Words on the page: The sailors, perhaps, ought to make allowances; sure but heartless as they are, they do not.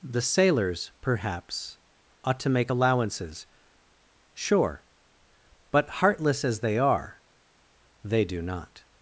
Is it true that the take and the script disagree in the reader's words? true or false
false